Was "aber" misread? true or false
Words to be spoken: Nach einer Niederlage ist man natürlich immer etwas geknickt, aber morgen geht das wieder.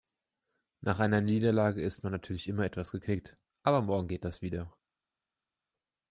false